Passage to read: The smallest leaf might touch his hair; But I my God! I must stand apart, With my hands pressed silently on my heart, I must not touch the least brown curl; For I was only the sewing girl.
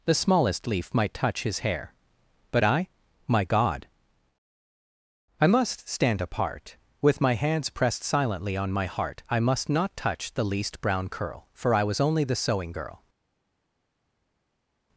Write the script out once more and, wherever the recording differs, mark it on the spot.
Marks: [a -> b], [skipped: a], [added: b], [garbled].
The smallest leaf might touch his hair; But I my God! I must stand apart, With my hands pressed silently on my heart, I must not touch the least brown curl; For I was only the sewing girl.